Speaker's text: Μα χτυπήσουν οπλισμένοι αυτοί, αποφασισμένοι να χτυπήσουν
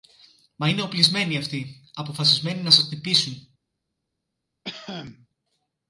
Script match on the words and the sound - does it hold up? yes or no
no